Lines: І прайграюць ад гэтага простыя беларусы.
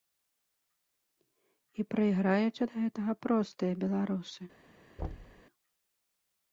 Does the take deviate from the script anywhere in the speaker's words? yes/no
no